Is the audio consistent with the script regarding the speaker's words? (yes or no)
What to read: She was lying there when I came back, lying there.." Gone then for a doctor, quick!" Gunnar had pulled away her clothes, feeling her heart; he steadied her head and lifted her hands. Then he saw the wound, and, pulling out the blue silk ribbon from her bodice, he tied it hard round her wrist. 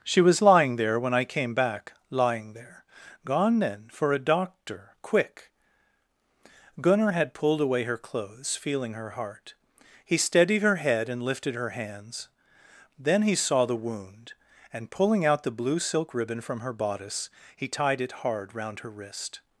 yes